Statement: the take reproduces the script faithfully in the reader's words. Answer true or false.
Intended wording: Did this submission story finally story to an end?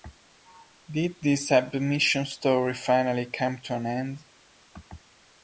false